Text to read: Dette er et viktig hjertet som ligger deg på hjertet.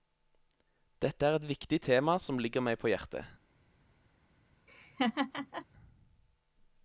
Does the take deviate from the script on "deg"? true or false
true